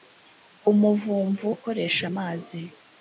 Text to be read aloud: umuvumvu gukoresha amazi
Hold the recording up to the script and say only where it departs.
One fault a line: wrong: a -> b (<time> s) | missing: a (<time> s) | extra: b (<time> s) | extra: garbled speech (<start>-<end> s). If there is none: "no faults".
no faults